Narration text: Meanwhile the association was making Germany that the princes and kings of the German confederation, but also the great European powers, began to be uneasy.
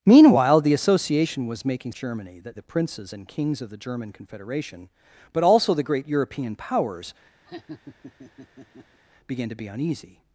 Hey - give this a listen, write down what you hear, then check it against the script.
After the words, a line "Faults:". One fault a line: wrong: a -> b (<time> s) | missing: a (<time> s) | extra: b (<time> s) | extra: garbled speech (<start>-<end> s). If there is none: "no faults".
Meanwhile the association was making Germany that the princes and kings of the German confederation, but also the great European powers, began to be uneasy.
Faults:
no faults